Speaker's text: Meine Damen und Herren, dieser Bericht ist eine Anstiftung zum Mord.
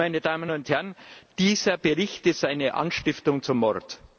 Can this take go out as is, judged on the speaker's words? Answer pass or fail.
pass